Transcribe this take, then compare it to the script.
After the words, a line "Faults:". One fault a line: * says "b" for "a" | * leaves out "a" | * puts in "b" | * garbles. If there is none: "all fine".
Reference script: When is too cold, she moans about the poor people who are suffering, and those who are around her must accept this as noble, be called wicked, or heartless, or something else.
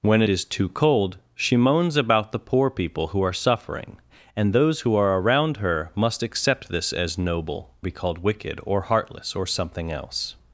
When is too cold, she moans about the poor people who are suffering, and those who are around her must accept this as noble, be called wicked, or heartless, or something else.
Faults:
all fine